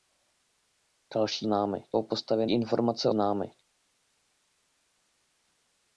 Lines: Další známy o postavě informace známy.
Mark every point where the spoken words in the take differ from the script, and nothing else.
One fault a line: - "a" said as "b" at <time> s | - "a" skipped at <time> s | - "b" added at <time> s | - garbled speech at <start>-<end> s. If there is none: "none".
none